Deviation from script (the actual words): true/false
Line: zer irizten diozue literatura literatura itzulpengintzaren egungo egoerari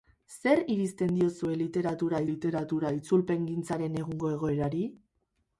false